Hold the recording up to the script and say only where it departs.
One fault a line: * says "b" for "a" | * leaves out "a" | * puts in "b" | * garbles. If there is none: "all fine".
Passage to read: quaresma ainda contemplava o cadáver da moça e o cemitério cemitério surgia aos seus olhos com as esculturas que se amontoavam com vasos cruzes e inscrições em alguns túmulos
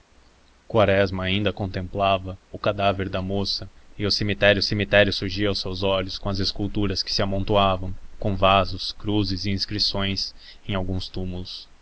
all fine